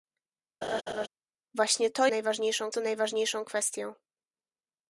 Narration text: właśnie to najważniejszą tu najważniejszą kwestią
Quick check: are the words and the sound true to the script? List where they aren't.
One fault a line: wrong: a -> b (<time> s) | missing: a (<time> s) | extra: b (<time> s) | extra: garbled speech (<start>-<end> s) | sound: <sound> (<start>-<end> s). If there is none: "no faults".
sound: laugh (0.6-1.1 s)